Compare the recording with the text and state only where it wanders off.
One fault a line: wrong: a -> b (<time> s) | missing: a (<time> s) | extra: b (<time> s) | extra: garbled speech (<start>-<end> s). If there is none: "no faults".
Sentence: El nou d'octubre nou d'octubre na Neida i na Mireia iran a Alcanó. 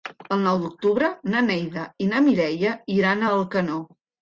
missing: nou d'octubre (1.1 s)